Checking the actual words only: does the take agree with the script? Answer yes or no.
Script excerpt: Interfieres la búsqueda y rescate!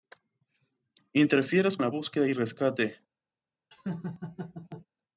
yes